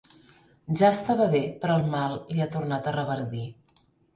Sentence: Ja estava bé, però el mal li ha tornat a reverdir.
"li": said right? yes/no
yes